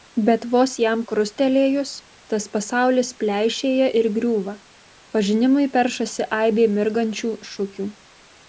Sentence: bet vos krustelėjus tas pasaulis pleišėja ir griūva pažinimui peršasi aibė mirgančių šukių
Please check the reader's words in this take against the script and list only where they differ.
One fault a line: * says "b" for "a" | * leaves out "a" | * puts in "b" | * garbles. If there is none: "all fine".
* puts in "jam"